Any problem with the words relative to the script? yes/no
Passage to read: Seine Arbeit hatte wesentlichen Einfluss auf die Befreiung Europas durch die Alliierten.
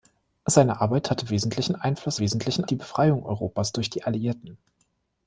yes